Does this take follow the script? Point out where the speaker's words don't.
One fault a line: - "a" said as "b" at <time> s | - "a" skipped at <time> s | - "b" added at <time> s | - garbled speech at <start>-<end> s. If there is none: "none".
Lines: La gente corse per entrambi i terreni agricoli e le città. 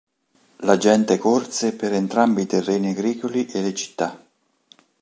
none